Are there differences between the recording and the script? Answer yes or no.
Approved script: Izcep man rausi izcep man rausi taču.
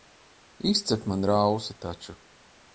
yes